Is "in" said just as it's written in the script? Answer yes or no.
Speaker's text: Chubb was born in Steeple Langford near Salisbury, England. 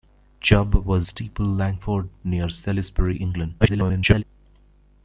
no